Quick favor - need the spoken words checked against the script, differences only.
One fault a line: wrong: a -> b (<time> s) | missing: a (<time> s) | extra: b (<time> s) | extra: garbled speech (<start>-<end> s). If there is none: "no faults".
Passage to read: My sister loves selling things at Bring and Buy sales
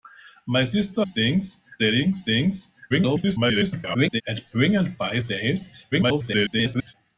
wrong: loves -> things (1.0 s)
extra: garbled speech (2.9-4.2 s)
extra: garbled speech (5.9-6.9 s)